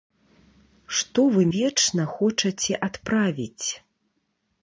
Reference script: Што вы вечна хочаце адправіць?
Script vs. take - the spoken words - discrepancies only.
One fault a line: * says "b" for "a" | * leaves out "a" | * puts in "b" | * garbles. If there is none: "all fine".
all fine